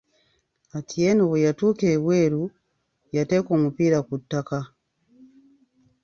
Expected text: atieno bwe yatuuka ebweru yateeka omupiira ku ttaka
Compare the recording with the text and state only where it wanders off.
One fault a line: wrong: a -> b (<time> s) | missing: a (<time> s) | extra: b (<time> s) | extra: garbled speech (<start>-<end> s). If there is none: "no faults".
no faults